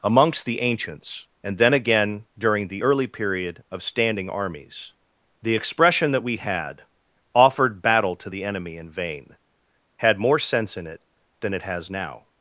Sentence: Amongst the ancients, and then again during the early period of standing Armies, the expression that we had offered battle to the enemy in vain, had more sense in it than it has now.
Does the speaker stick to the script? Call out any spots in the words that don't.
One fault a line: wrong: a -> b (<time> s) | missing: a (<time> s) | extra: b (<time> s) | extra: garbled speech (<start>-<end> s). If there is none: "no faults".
no faults